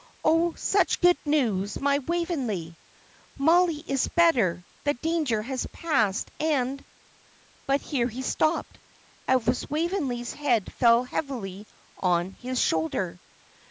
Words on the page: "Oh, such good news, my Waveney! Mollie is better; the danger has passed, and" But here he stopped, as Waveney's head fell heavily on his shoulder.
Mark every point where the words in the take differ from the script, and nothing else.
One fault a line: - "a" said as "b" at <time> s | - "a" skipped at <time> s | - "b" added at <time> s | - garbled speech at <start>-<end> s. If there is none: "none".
none